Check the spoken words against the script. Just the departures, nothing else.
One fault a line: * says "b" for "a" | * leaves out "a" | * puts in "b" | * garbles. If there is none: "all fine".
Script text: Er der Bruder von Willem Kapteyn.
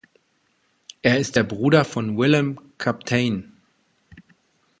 * puts in "ist"